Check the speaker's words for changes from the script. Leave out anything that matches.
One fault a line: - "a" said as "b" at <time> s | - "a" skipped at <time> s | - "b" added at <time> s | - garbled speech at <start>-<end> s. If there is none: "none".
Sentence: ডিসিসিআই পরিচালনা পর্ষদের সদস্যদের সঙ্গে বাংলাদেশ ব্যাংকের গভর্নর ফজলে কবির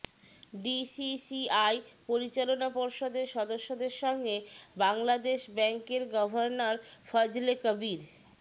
none